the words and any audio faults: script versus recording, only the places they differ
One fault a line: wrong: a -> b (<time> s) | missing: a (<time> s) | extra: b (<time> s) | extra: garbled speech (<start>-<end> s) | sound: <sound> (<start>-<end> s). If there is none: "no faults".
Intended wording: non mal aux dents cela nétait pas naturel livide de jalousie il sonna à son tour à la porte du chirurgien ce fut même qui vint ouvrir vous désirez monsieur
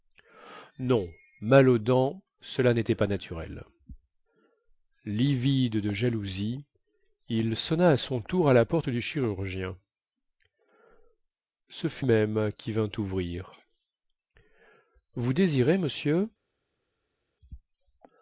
no faults